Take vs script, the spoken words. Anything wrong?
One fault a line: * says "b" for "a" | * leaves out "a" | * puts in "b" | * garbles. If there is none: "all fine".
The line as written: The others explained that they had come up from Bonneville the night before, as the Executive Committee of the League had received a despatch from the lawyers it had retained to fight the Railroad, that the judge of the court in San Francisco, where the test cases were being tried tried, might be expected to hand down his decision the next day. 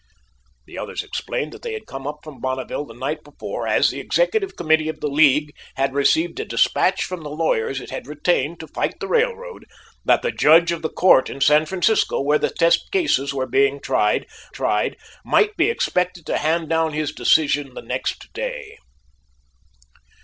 all fine